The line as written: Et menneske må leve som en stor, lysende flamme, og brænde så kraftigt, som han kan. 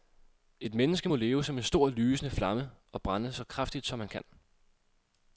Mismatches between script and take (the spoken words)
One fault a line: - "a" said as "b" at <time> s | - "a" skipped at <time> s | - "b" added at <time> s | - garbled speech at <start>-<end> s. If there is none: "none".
none